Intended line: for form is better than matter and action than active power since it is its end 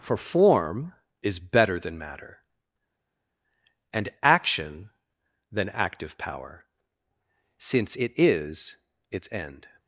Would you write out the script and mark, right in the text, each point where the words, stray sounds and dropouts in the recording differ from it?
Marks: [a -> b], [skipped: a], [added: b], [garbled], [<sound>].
for form is better than matter and action than active power since it is its end